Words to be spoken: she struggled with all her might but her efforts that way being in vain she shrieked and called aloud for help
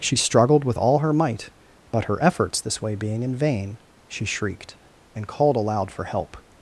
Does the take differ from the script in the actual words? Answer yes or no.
yes